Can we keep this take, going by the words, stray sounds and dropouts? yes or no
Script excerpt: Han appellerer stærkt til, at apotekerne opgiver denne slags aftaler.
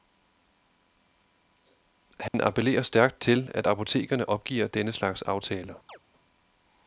no